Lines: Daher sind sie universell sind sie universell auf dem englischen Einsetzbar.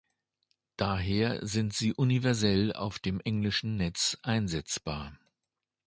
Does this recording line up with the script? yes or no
no